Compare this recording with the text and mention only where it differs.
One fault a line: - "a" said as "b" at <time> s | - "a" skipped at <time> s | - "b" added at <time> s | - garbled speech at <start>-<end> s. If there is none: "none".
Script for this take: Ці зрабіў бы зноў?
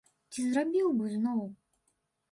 none